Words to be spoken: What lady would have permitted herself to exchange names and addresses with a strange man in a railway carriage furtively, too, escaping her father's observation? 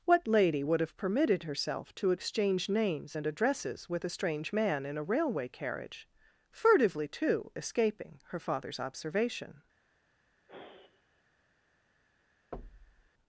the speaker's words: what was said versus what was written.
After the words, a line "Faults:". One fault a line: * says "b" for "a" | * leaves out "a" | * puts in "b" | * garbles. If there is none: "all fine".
What lady would have permitted herself to exchange names and addresses with a strange man in a railway carriage furtively, too, escaping her father's observation?
Faults:
all fine